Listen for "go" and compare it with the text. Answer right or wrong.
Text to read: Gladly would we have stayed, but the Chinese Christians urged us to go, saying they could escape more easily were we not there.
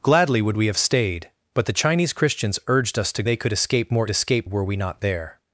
wrong